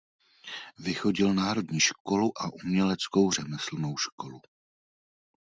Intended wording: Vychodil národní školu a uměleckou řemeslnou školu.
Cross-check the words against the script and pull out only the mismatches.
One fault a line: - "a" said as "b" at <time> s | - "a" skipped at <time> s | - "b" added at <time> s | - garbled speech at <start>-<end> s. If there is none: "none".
none